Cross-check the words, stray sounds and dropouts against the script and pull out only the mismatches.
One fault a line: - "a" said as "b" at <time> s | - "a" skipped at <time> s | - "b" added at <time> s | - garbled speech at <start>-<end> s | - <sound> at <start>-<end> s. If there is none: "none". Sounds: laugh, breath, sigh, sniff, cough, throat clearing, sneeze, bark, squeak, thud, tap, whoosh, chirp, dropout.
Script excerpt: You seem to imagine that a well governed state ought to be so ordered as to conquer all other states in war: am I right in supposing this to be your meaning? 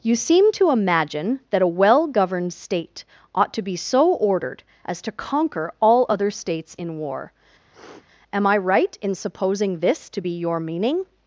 - sniff at 7.7-8.1 s